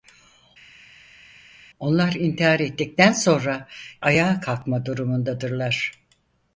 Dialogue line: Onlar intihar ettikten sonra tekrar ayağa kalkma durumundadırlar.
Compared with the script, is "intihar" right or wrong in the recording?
right